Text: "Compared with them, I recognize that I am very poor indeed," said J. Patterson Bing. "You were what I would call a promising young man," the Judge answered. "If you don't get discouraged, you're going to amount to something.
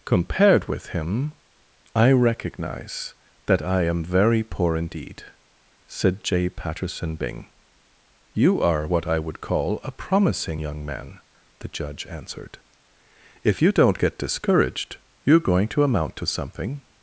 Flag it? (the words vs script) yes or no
yes